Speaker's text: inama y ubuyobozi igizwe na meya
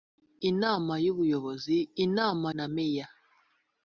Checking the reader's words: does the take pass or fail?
fail